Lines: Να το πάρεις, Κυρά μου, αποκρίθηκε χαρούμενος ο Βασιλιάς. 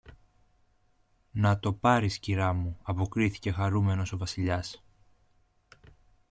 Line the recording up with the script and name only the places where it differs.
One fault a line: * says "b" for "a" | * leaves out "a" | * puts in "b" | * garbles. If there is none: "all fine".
all fine